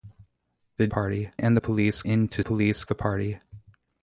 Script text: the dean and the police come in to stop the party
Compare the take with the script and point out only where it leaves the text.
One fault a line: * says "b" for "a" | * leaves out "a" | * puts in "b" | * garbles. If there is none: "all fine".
* says "party" for "dean"
* leaves out "come"
* says "police" for "stop"